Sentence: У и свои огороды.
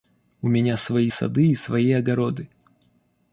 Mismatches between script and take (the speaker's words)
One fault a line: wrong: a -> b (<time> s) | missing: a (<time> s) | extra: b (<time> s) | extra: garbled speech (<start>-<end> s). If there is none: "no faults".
extra: меня свои сады (0.5 s)